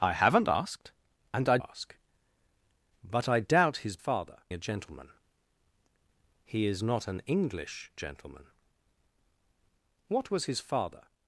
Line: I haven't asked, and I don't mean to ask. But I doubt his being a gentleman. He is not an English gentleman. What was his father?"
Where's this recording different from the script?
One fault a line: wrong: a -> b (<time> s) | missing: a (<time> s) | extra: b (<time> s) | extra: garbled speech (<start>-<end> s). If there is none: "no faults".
missing: don't mean to (1.6 s)
wrong: being -> father (4.0 s)